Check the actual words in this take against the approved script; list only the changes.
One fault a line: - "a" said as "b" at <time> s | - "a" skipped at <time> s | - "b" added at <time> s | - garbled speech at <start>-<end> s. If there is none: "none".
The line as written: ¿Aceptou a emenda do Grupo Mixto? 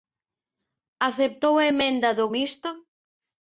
- "Grupo" skipped at 2.2 s